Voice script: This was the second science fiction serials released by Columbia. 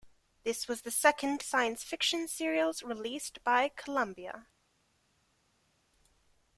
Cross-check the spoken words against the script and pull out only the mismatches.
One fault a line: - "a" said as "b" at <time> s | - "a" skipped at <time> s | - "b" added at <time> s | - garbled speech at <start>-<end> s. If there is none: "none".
none